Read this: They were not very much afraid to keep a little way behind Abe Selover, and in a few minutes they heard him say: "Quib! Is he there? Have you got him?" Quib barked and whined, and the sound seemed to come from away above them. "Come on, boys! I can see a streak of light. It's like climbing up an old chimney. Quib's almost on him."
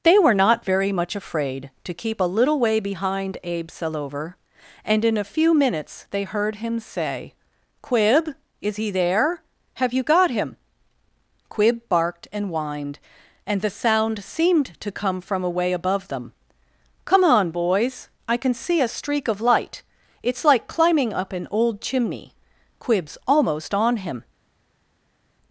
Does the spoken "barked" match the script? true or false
true